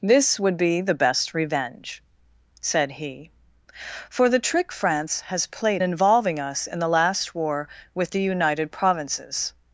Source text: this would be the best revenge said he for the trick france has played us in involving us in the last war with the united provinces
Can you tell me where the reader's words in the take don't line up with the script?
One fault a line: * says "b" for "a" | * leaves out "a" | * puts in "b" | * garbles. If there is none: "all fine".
* leaves out "us in"